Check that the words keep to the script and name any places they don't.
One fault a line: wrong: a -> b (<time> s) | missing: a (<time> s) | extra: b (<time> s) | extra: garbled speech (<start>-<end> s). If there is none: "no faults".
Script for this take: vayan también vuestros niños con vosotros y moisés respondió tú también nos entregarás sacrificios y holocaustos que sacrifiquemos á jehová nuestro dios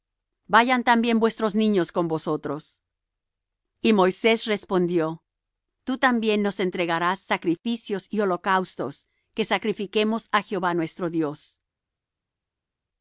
no faults